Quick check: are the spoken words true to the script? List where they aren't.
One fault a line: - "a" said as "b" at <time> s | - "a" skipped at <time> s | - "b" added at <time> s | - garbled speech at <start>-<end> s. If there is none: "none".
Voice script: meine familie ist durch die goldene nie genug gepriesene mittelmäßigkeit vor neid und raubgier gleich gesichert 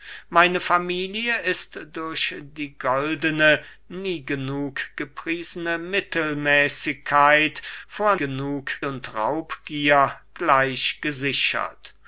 - "neid" said as "genug" at 8.2 s